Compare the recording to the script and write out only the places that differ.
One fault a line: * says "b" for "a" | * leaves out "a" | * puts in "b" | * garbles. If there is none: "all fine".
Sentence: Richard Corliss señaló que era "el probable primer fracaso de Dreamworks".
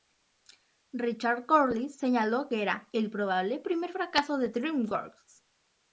all fine